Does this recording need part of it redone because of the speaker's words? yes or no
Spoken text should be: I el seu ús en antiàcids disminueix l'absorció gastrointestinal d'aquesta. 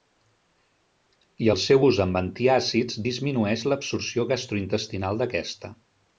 yes